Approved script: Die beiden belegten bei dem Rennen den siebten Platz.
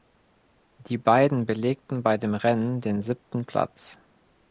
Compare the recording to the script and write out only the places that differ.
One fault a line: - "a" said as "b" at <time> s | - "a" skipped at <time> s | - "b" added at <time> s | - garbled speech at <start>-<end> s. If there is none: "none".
none